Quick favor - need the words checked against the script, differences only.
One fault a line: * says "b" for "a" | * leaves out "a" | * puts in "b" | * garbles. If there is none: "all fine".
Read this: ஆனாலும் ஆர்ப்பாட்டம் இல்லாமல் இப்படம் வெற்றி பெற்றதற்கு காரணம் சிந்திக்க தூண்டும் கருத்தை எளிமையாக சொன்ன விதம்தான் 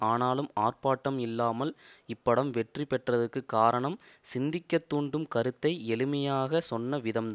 all fine